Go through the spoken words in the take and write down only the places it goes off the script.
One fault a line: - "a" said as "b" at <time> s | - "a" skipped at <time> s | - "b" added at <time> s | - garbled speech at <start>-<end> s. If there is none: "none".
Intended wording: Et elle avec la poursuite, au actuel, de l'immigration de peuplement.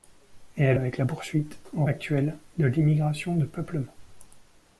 none